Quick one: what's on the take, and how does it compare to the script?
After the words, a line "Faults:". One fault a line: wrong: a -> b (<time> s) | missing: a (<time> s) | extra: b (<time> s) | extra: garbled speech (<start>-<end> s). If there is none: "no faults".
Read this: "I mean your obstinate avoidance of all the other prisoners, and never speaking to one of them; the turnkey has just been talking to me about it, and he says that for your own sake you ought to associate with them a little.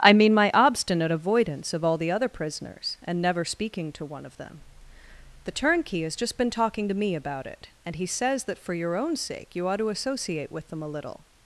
"I mean my obstinate avoidance of all the other prisoners, and never speaking to one of them; the turnkey has just been talking to me about it, and he says that for your own sake you ought to associate with them a little.
Faults:
wrong: your -> my (0.3 s)